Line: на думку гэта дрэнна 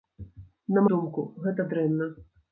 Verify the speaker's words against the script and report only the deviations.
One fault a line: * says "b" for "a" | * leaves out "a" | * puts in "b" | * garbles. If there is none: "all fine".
all fine